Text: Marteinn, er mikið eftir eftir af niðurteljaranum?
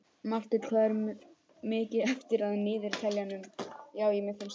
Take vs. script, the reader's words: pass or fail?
fail